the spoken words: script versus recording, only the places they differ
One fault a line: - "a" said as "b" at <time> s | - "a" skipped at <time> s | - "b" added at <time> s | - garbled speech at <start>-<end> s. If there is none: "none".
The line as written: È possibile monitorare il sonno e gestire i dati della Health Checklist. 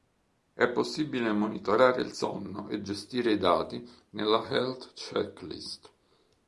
- "della" said as "nella" at 4.1 s